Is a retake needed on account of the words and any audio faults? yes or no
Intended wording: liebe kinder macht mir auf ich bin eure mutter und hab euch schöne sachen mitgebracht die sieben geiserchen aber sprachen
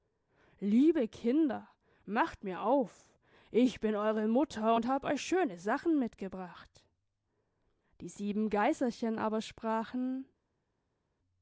no